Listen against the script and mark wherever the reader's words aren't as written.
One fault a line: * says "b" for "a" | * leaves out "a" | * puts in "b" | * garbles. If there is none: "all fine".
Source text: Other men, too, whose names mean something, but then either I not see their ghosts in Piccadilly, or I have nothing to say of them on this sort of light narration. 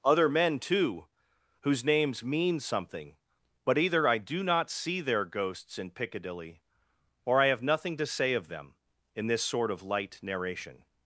* leaves out "then"
* puts in "do"
* says "in" for "on"